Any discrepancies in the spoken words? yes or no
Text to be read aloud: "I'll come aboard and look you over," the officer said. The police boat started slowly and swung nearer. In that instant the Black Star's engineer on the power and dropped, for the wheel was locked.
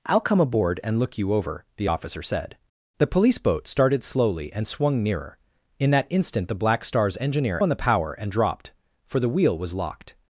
no